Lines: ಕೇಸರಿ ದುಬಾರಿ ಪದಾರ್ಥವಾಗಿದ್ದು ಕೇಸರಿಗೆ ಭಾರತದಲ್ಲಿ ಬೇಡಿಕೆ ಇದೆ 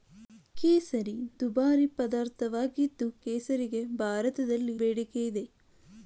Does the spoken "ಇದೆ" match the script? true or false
true